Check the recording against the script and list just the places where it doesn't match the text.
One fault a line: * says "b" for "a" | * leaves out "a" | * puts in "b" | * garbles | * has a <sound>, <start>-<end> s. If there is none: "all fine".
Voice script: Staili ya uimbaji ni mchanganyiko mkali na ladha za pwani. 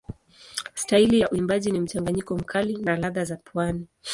all fine